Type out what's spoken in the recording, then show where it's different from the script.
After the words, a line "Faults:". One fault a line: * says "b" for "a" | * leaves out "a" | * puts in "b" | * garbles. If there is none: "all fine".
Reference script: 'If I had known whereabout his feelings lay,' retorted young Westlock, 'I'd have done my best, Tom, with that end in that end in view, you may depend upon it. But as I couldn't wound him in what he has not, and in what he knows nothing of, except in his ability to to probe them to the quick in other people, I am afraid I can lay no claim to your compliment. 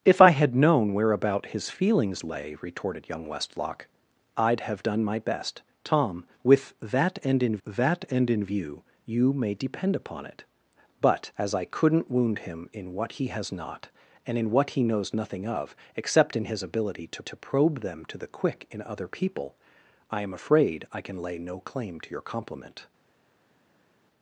'If I had known whereabout his feelings lay,' retorted young Westlock, 'I'd have done my best, Tom, with that end in that end in view, you may depend upon it. But as I couldn't wound him in what he has not, and in what he knows nothing of, except in his ability to to probe them to the quick in other people, I am afraid I can lay no claim to your compliment.
Faults:
all fine